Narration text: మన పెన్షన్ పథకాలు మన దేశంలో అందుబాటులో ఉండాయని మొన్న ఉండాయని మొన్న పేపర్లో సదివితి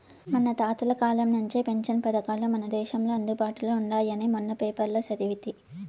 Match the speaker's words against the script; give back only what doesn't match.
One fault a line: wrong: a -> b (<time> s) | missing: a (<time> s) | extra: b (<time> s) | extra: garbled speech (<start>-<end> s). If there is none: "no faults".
extra: తాతల కాలం నుంచే (0.6 s)
missing: ఉండాయని మొన్న (4.5 s)